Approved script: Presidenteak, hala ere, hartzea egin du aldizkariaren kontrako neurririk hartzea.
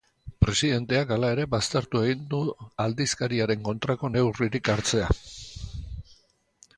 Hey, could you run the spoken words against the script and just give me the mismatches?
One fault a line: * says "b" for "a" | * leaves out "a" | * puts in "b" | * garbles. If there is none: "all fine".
* says "baztertu" for "hartzea"